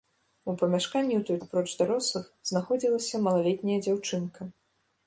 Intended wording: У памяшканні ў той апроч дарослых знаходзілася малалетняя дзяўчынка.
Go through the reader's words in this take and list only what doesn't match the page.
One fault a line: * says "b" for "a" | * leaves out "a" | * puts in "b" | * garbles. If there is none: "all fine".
all fine